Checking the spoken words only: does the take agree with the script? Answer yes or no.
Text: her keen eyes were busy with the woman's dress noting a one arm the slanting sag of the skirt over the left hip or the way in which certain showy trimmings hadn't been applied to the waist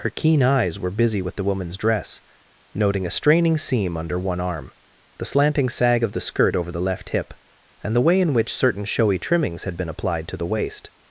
no